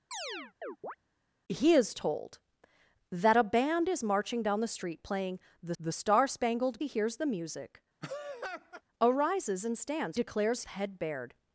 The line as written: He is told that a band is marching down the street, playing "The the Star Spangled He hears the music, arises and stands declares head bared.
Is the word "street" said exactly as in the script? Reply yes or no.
yes